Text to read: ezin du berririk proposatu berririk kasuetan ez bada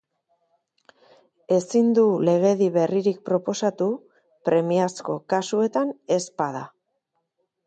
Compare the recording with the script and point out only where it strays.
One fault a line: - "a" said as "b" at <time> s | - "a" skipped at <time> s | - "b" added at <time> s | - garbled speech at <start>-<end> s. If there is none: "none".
- "legedi" added at 2.3 s
- "berririk" said as "premiazko" at 4.5 s